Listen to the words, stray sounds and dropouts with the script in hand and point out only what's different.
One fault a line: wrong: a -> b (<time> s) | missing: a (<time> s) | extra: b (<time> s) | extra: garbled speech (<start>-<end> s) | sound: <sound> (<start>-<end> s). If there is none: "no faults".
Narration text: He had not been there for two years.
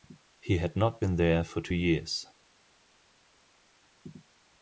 no faults